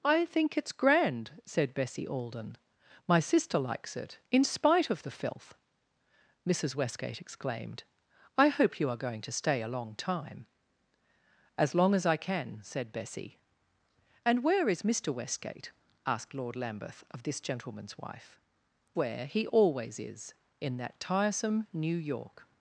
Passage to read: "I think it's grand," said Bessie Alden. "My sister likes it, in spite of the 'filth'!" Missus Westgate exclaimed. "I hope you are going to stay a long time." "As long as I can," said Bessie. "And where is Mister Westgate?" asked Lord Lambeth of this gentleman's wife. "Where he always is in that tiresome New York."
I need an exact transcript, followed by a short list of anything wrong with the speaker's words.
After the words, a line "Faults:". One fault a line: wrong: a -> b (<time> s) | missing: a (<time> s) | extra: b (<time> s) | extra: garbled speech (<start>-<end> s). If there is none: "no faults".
"I think it's grand," said Bessie Alden. "My sister likes it, in spite of the 'filth'!" Missus Westgate exclaimed. "I hope you are going to stay a long time." "As long as I can," said Bessie. "And where is Mister Westgate?" asked Lord Lambeth of this gentleman's wife. "Where he always is in that tiresome New York."
Faults:
no faults